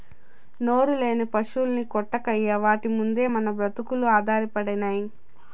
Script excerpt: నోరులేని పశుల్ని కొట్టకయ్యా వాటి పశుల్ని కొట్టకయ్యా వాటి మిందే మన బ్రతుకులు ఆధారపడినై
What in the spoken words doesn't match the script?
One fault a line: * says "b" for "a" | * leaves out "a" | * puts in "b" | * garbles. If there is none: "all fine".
* leaves out "పశుల్ని కొట్టకయ్యా వాటి"